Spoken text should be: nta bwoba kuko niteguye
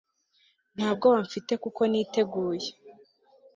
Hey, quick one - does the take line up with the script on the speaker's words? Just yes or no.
no